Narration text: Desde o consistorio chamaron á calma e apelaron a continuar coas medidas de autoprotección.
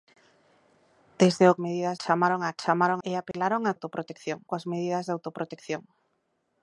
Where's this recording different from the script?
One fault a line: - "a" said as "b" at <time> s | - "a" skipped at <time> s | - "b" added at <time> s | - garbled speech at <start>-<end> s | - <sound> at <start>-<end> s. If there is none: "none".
- "consistorio" said as "medidas" at 1.6 s
- "calma" said as "chamaron" at 2.6 s
- dropout at 3.3-3.3 s
- "continuar" said as "autoprotección" at 3.7 s